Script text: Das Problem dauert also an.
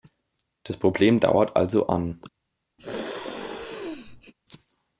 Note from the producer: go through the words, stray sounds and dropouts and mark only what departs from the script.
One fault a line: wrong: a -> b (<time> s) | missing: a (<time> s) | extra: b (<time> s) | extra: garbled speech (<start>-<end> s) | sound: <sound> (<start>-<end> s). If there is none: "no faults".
sound: sneeze (2.8-4.3 s)